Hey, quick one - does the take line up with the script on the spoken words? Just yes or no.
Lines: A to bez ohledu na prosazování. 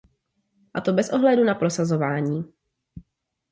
yes